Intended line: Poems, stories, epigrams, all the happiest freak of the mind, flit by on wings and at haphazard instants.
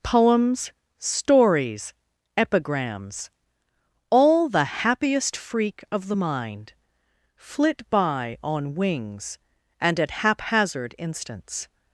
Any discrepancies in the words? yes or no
no